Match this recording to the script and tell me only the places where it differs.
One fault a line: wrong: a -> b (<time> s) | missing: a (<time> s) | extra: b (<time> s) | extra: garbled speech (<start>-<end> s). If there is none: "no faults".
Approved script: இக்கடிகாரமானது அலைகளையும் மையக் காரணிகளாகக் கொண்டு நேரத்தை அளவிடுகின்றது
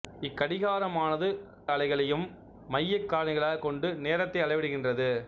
no faults